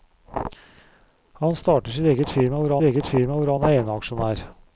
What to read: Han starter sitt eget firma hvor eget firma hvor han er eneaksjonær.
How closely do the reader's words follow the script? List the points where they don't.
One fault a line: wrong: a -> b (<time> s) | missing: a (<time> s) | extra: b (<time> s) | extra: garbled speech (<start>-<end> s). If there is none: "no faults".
no faults